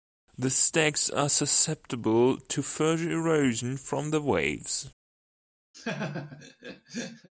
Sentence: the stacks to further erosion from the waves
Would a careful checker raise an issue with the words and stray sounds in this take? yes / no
yes